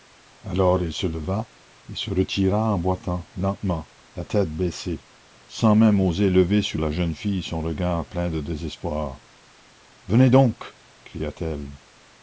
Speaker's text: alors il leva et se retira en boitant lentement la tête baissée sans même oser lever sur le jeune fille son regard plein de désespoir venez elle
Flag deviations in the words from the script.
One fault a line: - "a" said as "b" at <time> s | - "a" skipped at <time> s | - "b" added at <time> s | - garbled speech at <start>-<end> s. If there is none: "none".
- "se" added at 0.9 s
- "le" said as "la" at 6.8 s
- "donc cria t" added at 10.3 s